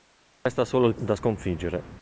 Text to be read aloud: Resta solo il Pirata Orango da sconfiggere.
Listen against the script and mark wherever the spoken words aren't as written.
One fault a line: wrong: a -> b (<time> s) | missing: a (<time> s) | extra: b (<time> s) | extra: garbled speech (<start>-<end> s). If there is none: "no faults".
missing: Pirata Orango (0.9 s)